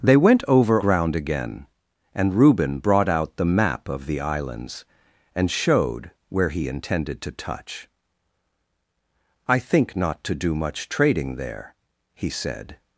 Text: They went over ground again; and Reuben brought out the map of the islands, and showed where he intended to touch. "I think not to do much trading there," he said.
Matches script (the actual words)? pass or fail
pass